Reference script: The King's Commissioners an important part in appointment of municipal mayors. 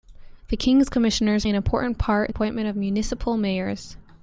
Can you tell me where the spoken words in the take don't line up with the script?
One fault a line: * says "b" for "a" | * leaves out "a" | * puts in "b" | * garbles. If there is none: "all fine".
all fine